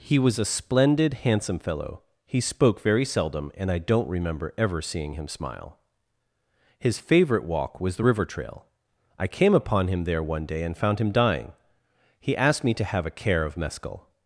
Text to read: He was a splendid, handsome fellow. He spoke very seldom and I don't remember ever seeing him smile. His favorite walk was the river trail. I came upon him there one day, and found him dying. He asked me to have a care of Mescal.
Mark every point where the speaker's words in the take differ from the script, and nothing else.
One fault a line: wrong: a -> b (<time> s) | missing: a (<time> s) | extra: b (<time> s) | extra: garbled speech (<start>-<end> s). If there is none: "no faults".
no faults